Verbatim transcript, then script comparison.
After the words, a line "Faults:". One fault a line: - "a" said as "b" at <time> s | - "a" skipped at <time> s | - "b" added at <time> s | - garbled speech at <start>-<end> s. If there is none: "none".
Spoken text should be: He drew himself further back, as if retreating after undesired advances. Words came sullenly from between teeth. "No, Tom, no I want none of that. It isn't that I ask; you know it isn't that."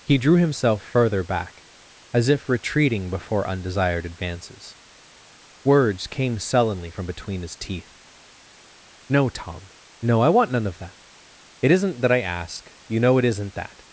He drew himself further back, as if retreating before undesired advances. Words came sullenly from between his teeth. "No, Tom, no I want none of that. It isn't that I ask; you know it isn't that."
Faults:
- "after" said as "before" at 3.1 s
- "his" added at 7.4 s